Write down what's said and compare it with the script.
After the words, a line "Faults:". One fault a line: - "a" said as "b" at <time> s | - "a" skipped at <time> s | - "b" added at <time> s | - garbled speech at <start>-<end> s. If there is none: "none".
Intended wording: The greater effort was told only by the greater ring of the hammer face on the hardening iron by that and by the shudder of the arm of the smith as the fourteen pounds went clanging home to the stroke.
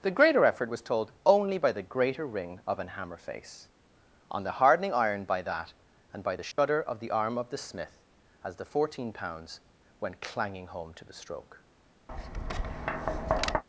The greater effort was told only by the greater ring of an hammer face on the hardening iron by that and by the shudder of the arm of the smith as the fourteen pounds went clanging home to the stroke.
Faults:
- "the" said as "an" at 2.8 s